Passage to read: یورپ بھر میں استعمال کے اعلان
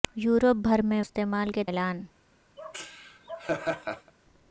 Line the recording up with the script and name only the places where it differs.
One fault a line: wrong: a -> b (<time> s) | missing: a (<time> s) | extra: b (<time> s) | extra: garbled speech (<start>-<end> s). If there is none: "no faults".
no faults